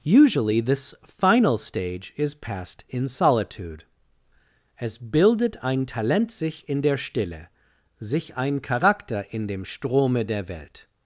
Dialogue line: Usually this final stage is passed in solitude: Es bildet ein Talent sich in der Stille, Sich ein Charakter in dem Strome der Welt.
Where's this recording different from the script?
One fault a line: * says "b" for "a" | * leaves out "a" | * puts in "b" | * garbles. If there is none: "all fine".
all fine